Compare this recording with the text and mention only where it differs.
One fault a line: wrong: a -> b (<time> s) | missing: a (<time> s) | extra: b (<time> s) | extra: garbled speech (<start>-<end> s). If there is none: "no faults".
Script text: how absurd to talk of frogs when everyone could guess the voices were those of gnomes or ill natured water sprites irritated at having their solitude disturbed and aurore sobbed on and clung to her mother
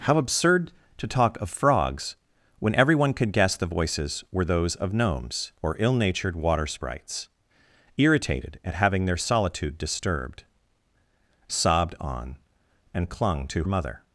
missing: and aurore (10.4 s)
missing: her (13.6 s)